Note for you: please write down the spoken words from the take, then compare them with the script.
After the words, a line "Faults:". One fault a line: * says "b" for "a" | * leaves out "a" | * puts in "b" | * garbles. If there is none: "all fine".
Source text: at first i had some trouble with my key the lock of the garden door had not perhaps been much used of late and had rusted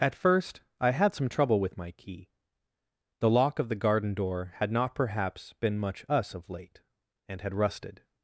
at first i had some trouble with my key the lock of the garden door had not perhaps been much us of late and had rusted
Faults:
* says "us" for "used"